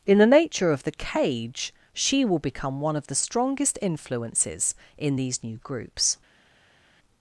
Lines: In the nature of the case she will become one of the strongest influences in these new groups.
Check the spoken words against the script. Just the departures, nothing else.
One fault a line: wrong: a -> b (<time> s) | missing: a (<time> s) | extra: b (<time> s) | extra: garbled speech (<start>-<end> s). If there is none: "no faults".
wrong: case -> cage (0.9 s)